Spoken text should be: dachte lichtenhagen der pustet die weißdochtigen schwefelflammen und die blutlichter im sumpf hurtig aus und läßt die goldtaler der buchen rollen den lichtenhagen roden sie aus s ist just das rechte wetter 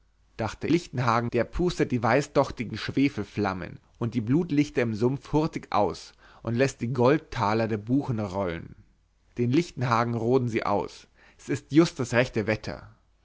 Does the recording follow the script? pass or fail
pass